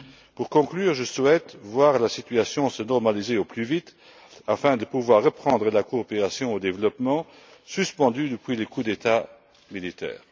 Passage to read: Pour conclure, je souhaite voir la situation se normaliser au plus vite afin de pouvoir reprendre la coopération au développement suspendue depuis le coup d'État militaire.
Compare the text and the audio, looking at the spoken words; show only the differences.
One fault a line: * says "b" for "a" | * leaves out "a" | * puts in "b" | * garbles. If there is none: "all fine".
all fine